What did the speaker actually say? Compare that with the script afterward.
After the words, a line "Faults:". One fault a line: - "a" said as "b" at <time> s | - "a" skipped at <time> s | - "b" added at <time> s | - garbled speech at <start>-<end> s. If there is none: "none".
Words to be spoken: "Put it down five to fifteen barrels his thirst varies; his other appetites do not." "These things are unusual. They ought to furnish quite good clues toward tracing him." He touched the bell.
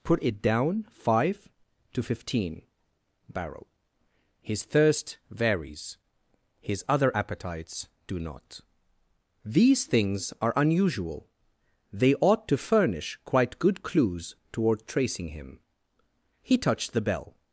"Put it down five to fifteen barrel his thirst varies; his other appetites do not." "These things are unusual. They ought to furnish quite good clues toward tracing him." He touched the bell.
Faults:
- "barrels" said as "barrel" at 3.3 s